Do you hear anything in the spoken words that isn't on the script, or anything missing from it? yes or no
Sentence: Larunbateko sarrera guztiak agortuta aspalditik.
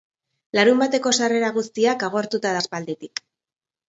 no